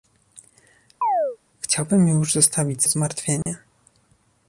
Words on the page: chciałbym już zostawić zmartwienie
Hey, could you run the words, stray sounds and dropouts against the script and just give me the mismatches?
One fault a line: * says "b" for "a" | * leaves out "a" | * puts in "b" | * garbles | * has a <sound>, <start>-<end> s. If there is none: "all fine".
* has a chirp, 1.0-1.4 s
* has a dropout, 3.4-3.5 s